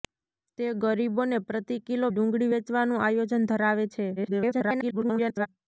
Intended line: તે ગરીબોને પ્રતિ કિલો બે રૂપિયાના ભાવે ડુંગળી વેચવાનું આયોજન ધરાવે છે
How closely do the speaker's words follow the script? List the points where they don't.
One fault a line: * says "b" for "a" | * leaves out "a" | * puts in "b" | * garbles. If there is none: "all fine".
* leaves out "બે રૂપિયાના ભાવે"
* garbles